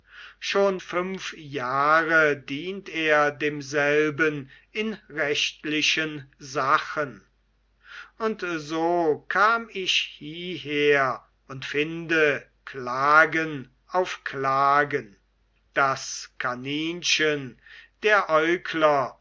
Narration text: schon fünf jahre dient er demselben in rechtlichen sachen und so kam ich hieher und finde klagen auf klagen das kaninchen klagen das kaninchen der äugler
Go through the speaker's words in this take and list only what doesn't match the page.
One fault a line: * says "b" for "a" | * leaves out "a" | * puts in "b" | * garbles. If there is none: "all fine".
* leaves out "klagen das kaninchen"